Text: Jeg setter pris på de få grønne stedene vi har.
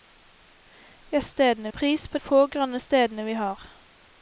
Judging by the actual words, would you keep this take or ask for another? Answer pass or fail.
fail